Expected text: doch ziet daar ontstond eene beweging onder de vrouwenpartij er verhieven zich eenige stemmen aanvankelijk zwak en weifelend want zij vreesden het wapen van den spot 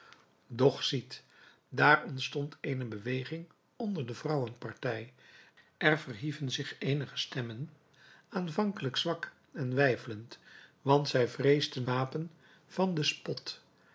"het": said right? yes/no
no